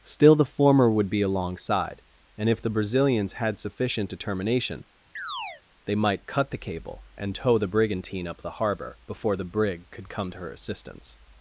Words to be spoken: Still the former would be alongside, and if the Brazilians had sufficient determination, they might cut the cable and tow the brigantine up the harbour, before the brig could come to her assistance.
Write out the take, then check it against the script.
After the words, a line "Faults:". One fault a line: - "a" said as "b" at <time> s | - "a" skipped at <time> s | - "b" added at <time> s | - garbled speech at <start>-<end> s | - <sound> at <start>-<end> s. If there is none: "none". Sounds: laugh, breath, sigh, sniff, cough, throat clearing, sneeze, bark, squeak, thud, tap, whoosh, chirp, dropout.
Still the former would be alongside, and if the Brazilians had sufficient determination, they might cut the cable and tow the brigantine up the harbour, before the brig could come to her assistance.
Faults:
- chirp at 5.2-5.6 s